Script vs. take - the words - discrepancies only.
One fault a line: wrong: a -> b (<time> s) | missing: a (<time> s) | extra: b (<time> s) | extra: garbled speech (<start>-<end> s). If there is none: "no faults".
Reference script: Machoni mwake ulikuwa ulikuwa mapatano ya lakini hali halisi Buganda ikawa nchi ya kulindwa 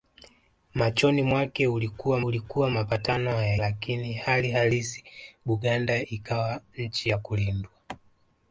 no faults